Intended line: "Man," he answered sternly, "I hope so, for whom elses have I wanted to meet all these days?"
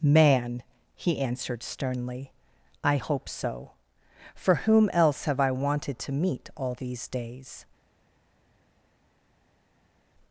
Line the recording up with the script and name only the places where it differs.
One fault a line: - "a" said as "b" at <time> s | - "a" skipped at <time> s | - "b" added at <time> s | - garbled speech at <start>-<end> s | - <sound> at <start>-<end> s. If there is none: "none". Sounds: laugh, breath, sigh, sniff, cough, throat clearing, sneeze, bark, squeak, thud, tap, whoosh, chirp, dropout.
- "elses" said as "else" at 4.9 s